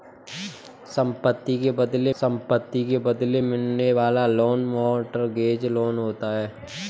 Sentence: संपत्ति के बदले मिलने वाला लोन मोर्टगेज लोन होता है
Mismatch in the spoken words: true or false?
true